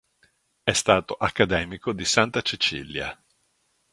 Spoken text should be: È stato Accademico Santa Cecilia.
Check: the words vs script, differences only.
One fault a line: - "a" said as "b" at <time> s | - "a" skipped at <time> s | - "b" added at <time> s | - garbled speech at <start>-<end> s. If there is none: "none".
- "di" added at 1.9 s